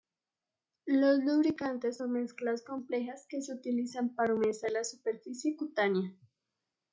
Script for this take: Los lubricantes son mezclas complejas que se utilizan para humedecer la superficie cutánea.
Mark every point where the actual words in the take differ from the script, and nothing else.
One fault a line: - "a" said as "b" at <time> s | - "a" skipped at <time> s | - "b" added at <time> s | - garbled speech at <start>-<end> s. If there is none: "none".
none